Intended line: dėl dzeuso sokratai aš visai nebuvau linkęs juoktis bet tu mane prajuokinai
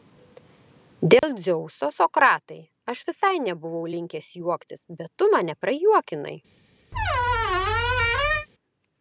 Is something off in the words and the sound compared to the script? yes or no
yes